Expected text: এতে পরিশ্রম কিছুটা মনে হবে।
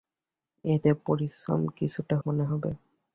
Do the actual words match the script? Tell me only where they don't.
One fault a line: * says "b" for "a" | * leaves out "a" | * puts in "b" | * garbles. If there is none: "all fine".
all fine